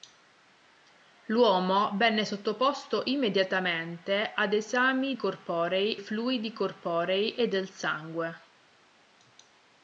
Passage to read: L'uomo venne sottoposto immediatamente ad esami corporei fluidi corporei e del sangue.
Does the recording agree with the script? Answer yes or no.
yes